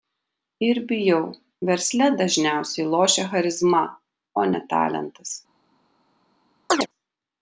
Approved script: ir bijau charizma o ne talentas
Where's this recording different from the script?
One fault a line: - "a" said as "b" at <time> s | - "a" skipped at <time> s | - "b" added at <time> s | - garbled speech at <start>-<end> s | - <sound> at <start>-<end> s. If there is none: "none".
- "versle dažniausiai lošia" added at 1.7 s
- chirp at 6.7-6.9 s